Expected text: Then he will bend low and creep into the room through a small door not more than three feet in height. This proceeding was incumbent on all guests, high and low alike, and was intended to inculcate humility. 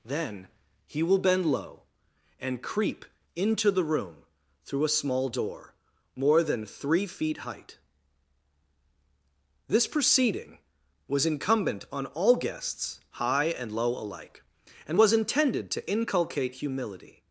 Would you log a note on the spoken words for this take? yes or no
yes